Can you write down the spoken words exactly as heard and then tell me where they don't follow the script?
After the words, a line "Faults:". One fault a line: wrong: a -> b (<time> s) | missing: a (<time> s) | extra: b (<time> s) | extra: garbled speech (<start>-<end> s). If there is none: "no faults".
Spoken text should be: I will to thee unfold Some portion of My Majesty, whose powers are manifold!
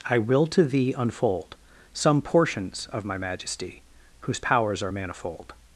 I will to thee unfold Some portions of My Majesty, whose powers are manifold!
Faults:
wrong: portion -> portions (2.2 s)